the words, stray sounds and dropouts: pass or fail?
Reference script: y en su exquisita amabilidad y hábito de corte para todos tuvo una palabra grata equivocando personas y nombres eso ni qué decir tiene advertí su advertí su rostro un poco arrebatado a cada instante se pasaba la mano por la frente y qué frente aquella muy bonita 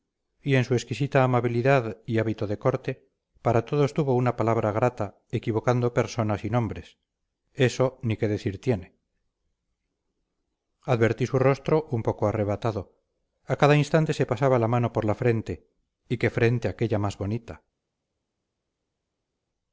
fail